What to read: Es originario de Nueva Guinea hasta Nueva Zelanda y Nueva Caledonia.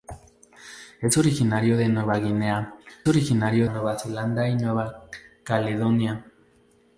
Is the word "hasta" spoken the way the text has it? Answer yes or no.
no